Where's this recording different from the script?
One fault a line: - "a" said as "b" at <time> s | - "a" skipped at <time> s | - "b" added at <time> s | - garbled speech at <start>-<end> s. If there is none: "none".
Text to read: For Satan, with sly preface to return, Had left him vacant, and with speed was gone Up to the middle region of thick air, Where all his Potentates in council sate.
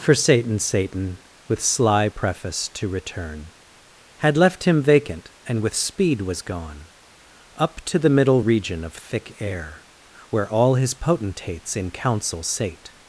- "Satan" added at 0.6 s